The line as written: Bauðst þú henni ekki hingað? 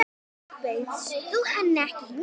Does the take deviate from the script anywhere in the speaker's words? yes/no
no